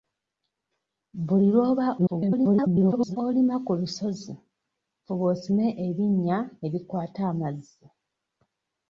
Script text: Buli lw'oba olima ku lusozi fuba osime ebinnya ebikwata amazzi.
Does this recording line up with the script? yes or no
no